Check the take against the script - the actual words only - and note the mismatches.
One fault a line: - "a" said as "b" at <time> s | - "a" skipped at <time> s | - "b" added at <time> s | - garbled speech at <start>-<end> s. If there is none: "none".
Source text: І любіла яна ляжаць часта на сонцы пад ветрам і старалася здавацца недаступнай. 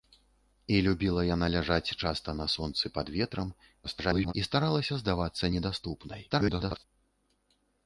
- garbled speech at 3.8-4.3 s
- garbled speech at 6.3-6.8 s